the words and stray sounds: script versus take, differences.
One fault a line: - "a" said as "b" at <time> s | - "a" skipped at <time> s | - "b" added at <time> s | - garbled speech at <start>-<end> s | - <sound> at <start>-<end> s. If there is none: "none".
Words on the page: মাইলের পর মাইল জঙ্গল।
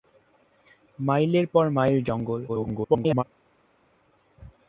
- garbled speech at 2.5-3.2 s